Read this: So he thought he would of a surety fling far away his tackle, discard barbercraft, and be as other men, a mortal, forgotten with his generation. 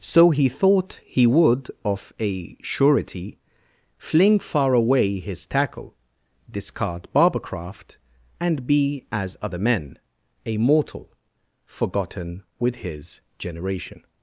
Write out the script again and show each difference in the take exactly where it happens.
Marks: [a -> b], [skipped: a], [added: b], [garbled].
So he thought he would of a surety fling far away his tackle, discard barbercraft, and be as other men, a mortal, forgotten with his generation.